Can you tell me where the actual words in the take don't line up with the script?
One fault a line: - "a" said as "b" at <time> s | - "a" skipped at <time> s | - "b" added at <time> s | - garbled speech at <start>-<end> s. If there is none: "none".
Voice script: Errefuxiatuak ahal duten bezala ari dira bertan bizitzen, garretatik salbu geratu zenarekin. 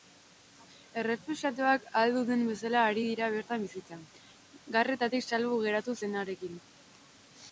none